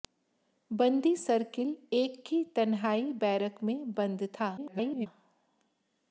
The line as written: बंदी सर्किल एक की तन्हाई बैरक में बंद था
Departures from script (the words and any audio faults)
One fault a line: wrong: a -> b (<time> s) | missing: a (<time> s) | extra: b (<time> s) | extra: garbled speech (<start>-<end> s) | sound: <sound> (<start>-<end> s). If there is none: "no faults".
extra: garbled speech (4.6-5.1 s)